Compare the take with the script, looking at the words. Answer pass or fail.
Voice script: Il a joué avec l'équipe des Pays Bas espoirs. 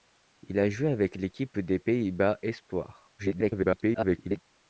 fail